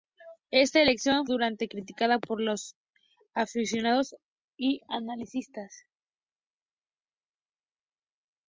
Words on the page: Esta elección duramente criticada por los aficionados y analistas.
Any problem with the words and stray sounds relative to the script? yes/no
no